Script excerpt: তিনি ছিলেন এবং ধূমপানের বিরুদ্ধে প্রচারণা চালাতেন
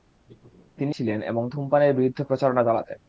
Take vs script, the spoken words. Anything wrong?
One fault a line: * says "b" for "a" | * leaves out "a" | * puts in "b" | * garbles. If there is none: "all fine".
all fine